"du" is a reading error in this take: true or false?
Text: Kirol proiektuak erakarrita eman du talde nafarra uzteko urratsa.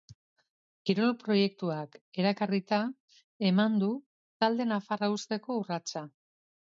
false